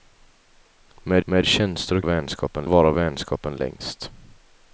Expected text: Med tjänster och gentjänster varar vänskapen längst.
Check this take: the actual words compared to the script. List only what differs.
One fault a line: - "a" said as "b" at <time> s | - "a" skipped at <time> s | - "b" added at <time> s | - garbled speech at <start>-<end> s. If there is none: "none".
- "med" added at 1.2 s
- "gentjänster" said as "vänskapen" at 2.0 s